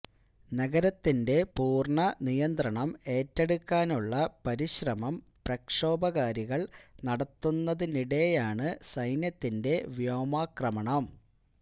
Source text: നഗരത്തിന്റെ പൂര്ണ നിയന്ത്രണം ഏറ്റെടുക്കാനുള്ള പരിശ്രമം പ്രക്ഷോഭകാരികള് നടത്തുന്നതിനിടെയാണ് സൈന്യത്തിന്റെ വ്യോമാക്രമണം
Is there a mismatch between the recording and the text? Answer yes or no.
no